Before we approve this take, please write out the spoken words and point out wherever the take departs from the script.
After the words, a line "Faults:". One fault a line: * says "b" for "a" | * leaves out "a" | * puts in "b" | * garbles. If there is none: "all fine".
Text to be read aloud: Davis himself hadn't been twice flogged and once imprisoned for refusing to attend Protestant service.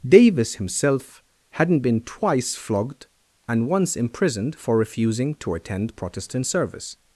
Davis himself hadn't been twice flogged and once imprisoned for refusing to attend Protestant service.
Faults:
all fine